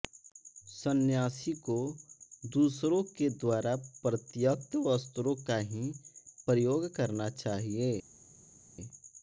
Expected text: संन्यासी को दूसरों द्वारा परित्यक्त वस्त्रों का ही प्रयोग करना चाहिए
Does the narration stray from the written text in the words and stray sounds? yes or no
yes